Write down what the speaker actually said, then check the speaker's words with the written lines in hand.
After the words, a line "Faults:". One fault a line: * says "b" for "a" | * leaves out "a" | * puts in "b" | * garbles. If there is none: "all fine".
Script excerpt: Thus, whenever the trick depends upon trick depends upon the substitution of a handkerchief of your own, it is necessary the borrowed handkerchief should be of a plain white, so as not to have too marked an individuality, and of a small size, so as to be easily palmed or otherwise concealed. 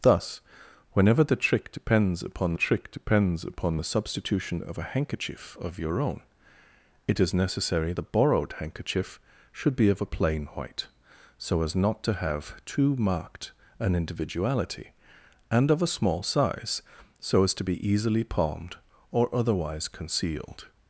Thus, whenever the trick depends upon trick depends upon the substitution of a handkerchief of your own, it is necessary the borrowed handkerchief should be of a plain white, so as not to have too marked an individuality, and of a small size, so as to be easily palmed or otherwise concealed.
Faults:
all fine